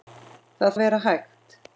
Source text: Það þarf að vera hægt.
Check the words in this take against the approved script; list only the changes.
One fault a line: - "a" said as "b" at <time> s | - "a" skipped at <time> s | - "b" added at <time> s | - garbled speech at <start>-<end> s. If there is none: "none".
- "þarf" skipped at 0.7 s